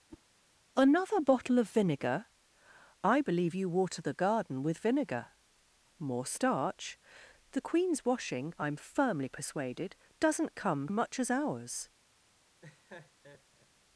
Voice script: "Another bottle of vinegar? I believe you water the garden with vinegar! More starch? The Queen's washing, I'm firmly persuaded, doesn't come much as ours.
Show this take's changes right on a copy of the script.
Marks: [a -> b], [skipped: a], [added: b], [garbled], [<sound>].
[whoosh] "Another bottle of vinegar? I believe you water the garden with vinegar! More starch? The Queen's washing, I'm firmly persuaded, doesn't come much as ours. [laugh]